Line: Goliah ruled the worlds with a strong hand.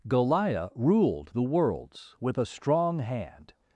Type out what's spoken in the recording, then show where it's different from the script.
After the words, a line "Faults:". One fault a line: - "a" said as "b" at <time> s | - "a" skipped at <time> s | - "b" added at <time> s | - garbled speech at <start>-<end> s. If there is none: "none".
Goliah ruled the worlds with a strong hand.
Faults:
none